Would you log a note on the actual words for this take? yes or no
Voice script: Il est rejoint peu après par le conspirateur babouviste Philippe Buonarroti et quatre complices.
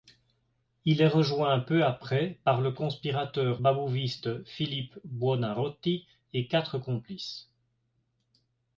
no